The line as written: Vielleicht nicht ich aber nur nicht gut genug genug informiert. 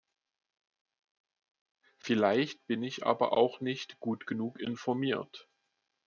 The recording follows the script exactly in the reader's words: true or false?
false